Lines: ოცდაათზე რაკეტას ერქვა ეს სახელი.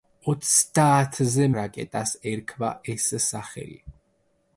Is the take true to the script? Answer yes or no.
yes